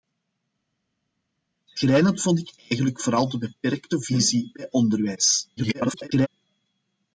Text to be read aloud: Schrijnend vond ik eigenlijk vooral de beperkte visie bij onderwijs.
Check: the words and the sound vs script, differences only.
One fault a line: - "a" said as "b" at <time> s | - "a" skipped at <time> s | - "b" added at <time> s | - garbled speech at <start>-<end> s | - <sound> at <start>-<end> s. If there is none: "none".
- garbled speech at 5.6-6.3 s